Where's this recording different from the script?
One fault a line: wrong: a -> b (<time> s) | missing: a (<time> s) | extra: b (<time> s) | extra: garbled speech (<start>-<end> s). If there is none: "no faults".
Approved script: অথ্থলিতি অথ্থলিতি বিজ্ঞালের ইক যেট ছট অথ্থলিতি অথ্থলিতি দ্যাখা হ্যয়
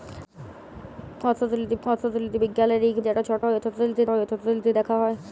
no faults